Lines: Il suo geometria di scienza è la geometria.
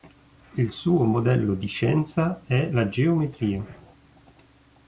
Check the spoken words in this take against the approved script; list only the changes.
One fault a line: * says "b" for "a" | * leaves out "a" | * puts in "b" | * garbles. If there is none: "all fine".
* says "modello" for "geometria"